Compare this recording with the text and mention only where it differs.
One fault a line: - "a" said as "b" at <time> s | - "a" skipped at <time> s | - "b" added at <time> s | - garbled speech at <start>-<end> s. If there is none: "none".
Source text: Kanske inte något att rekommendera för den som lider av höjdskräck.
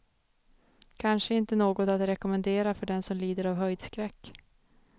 none